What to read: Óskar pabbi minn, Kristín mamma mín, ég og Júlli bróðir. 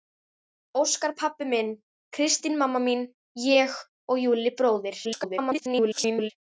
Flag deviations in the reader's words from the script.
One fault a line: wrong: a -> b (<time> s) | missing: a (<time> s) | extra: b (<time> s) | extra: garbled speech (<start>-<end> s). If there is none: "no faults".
extra: garbled speech (5.0-6.3 s)